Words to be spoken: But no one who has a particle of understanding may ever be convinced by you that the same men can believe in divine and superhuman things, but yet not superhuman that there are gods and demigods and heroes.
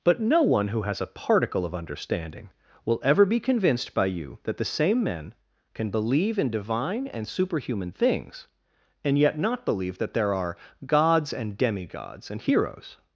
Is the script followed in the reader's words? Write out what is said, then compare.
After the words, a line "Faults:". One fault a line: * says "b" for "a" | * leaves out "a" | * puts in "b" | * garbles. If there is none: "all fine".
But no one who has a particle of understanding will ever be convinced by you that the same men can believe in divine and superhuman things, and yet not believe that there are gods and demigods and heroes.
Faults:
* says "will" for "may"
* says "and" for "but"
* says "believe" for "superhuman"